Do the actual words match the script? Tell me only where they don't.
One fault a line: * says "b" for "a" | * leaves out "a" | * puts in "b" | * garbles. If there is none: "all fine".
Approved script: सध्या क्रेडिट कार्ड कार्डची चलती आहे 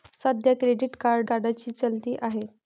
all fine